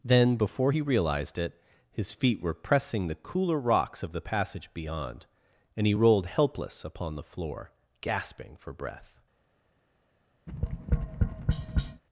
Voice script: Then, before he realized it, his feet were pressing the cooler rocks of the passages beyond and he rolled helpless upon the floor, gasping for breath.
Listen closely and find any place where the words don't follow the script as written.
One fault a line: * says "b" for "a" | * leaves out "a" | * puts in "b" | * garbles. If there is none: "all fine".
* says "passage" for "passages"